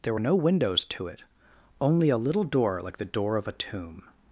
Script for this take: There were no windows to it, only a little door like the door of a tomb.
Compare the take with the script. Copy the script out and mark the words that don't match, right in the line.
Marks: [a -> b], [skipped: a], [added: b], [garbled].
There were no windows to it, only a little door like the door of a tomb.